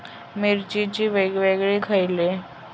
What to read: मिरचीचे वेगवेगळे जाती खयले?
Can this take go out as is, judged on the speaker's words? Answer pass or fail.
fail